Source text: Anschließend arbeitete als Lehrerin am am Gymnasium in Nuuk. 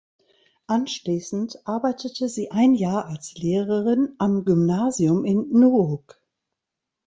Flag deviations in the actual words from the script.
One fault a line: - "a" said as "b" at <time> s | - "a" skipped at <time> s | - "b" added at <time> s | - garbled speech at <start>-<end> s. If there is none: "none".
- "sie ein Jahr" added at 2.3 s
- "am" skipped at 4.5 s